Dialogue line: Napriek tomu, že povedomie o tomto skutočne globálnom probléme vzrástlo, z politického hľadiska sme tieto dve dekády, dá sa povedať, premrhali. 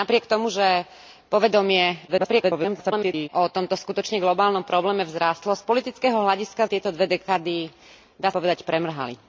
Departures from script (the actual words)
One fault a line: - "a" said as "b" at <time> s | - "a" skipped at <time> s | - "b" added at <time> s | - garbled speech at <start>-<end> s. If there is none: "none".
- garbled speech at 2.1-3.3 s
- "sme" skipped at 6.6 s
- "sa" skipped at 8.3 s